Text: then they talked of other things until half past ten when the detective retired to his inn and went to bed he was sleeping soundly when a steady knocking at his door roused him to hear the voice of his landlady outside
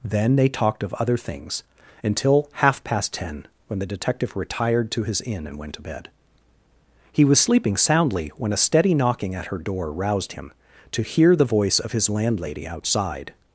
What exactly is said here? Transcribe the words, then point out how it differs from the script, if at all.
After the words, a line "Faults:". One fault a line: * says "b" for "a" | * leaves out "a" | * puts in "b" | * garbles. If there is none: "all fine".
then they talked of other things until half past ten when the detective retired to his inn and went to bed he was sleeping soundly when a steady knocking at her door roused him to hear the voice of his landlady outside
Faults:
* says "her" for "his"